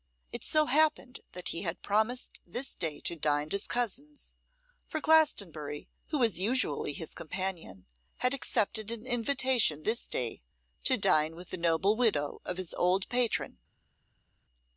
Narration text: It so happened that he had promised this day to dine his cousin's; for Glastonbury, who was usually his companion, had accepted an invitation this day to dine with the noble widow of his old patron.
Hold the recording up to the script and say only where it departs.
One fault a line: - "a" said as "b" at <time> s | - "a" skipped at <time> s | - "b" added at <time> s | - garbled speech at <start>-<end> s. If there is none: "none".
none